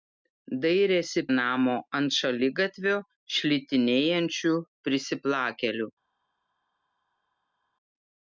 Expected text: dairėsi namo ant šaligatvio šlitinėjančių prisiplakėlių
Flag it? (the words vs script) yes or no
no